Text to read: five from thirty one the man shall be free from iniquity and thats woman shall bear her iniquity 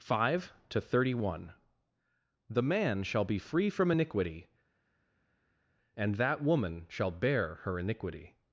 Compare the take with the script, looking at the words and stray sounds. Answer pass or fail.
fail